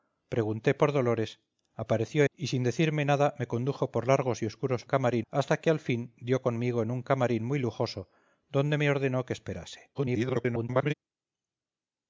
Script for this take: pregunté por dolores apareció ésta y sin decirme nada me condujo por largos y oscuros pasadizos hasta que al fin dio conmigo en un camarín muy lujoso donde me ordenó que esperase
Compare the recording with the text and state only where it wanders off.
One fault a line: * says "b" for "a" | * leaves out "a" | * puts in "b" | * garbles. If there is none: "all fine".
* leaves out "ésta"
* says "camarín" for "pasadizos"
* garbles